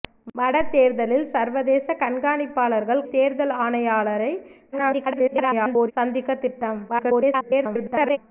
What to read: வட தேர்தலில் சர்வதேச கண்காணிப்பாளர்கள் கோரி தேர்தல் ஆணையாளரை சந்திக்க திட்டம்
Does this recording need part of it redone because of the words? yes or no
yes